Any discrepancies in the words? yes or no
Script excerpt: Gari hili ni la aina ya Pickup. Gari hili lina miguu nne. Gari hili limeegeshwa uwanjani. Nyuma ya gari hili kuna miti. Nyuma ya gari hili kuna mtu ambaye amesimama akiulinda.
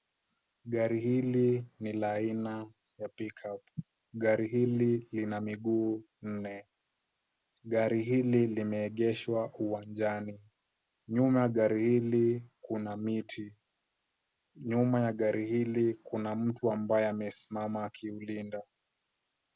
no